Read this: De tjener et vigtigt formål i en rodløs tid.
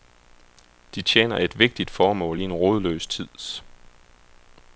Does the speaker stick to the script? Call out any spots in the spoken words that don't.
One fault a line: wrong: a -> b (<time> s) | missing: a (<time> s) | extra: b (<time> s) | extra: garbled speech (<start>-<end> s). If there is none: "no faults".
no faults